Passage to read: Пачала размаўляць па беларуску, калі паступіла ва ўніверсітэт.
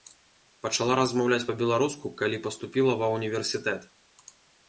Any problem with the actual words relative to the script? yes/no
no